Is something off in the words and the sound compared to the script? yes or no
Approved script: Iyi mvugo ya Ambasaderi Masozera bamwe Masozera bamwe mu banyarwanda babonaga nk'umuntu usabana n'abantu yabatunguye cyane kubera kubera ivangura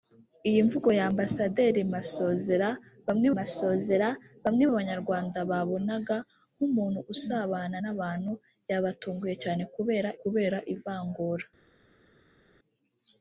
no